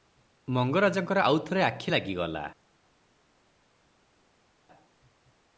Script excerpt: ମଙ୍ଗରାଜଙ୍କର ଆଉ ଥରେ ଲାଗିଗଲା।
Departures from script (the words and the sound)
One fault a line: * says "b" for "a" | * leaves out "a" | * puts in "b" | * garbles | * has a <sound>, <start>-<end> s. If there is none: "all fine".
* puts in "ଆଖି"